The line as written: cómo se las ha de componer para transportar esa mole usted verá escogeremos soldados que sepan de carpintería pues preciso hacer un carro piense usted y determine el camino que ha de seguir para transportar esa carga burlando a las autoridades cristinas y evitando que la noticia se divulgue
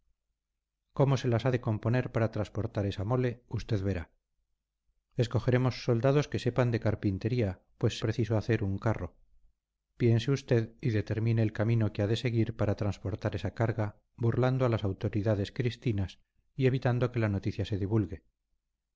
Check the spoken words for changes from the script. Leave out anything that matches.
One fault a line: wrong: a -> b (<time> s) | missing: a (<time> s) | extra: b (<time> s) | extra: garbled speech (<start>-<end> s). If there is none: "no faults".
no faults